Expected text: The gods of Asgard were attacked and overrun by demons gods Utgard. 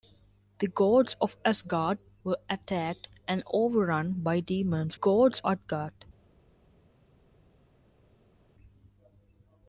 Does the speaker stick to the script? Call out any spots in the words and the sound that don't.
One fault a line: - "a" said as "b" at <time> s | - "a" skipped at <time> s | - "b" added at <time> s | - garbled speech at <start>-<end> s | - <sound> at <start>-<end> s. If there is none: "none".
none